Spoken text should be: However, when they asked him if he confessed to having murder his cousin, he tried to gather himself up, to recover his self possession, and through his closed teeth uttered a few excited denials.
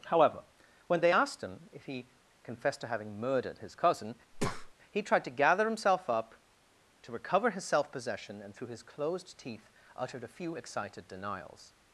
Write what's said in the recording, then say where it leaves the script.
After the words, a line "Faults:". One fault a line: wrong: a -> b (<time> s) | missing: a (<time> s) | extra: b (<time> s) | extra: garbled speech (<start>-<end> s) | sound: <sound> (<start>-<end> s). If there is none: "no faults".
However, when they asked him if he confessed to having murdered his cousin, he tried to gather himself up, to recover his self possession, and through his closed teeth uttered a few excited denials.
Faults:
wrong: murder -> murdered (3.2 s)
sound: breath (4.3-4.7 s)